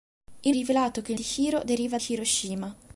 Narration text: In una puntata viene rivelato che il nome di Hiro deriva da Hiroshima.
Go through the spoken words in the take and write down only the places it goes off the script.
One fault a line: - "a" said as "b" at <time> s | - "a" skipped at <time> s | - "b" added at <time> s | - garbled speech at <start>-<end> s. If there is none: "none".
- "una puntata viene" skipped at 0.6 s
- "nome" skipped at 1.2 s
- "da" skipped at 2.0 s